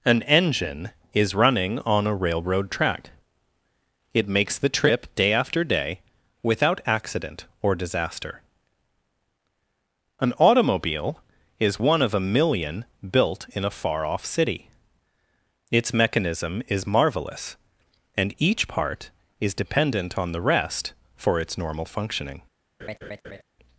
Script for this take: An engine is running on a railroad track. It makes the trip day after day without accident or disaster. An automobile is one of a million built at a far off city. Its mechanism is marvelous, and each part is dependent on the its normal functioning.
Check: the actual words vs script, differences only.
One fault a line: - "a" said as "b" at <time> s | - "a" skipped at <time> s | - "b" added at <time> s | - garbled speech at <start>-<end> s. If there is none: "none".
- "at" said as "in" at 13.5 s
- "rest for" added at 20.4 s